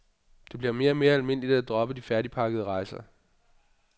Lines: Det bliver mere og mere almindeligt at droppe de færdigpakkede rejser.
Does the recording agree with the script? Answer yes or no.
yes